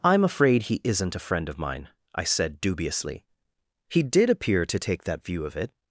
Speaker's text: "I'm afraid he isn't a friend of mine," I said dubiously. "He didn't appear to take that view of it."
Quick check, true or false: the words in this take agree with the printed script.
false